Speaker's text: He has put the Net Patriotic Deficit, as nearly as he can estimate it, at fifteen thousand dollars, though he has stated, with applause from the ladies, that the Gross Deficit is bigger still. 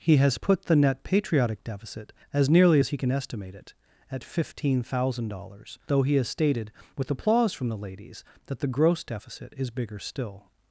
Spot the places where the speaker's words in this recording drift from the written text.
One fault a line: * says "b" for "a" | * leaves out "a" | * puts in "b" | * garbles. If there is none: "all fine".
all fine